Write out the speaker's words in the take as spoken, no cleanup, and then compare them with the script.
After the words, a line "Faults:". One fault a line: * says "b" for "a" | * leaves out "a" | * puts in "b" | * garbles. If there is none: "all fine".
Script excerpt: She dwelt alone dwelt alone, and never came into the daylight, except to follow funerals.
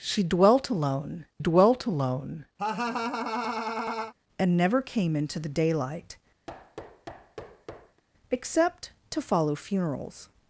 She dwelt alone dwelt alone, and never came into the daylight, except to follow funerals.
Faults:
all fine